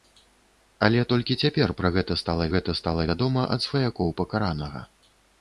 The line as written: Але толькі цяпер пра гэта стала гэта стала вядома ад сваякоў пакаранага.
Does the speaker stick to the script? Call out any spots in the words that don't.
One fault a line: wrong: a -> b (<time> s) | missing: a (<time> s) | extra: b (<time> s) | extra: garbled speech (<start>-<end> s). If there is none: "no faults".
no faults